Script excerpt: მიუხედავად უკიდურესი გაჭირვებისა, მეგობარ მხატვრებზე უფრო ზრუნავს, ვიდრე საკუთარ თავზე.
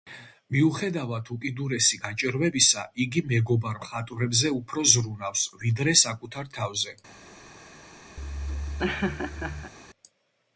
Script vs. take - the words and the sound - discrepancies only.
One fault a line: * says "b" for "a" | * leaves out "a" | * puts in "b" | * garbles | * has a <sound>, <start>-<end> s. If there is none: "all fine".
* puts in "იგი"
* has a laugh, 8.2-9.7 s